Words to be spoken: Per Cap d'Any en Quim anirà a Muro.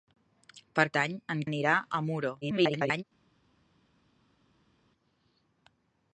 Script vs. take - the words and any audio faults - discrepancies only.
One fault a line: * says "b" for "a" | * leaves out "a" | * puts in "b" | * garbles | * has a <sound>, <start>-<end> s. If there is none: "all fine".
* leaves out "Cap"
* leaves out "Quim"
* garbles